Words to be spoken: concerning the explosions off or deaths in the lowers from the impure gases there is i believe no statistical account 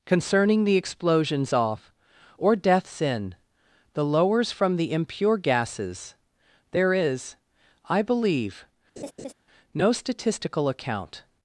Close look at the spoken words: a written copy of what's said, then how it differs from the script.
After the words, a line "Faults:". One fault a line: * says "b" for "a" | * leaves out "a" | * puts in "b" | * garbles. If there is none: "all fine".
concerning the explosions off or deaths in the lowers from the impure gases there is i believe no statistical account
Faults:
all fine